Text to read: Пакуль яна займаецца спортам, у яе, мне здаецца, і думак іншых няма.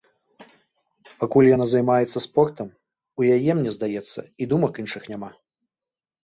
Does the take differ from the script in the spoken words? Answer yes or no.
no